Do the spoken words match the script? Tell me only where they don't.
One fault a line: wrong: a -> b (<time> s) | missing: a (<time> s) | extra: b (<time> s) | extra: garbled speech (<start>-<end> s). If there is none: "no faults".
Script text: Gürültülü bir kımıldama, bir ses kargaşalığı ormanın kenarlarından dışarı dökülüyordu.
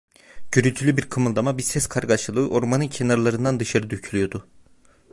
no faults